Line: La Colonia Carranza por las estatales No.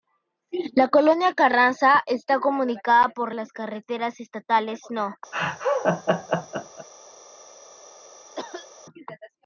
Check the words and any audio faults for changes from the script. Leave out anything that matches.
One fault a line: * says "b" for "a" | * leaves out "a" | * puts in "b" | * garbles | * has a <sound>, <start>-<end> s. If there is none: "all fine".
* puts in "está comunicada"
* puts in "carreteras"
* has a laugh, 5.3-6.9 s
* has a cough, 8.3-8.7 s